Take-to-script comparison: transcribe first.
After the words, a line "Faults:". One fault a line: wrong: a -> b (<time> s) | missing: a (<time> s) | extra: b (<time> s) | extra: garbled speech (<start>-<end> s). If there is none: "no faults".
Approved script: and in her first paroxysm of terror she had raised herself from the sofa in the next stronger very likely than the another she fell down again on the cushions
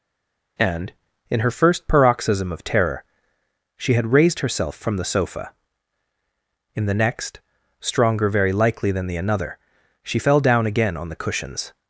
and in her first paroxysm of terror she had raised herself from the sofa in the next stronger very likely than the another she fell down again on the cushions
Faults:
no faults